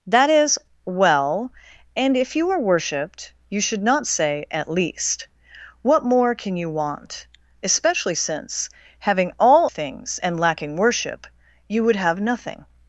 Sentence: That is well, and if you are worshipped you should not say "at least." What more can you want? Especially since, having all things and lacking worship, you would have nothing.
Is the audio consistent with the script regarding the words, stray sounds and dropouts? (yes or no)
yes